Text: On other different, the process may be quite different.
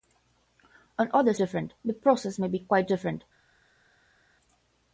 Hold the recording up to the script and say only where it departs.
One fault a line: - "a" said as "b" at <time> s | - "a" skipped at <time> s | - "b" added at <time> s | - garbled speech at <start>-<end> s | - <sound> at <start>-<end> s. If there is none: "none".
none